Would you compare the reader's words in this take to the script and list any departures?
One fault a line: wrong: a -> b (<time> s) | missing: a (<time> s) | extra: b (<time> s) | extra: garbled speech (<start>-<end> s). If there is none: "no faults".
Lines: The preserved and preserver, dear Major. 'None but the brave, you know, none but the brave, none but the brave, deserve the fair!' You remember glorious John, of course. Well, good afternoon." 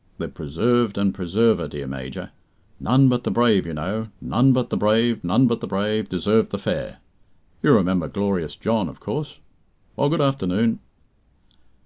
no faults